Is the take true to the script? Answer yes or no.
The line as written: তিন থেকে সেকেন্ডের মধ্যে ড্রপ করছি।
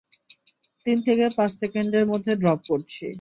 no